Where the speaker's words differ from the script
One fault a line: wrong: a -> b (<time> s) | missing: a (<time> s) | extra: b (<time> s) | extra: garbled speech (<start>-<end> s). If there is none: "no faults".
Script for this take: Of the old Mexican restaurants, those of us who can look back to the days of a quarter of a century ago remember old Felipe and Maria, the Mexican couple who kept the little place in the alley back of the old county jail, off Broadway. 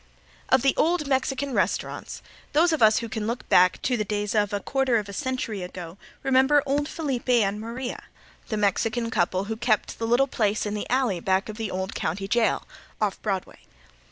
no faults